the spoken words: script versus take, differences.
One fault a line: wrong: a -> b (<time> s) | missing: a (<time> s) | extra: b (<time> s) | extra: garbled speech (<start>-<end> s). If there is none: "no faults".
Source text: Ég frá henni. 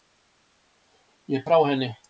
no faults